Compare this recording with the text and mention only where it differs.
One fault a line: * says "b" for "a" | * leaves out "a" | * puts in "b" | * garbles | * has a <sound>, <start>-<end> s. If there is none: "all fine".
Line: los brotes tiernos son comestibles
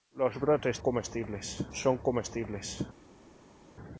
* says "comestibles" for "tiernos"